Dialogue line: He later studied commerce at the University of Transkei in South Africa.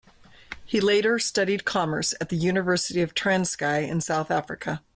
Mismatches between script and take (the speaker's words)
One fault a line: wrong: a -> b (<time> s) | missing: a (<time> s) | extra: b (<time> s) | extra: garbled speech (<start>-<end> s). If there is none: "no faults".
no faults